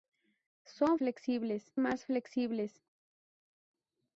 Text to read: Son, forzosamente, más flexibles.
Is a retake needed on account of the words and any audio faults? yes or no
yes